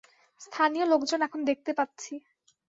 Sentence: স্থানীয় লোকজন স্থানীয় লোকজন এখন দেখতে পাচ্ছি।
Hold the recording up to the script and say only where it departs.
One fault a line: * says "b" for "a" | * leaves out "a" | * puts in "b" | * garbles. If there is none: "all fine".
* leaves out "স্থানীয় লোকজন"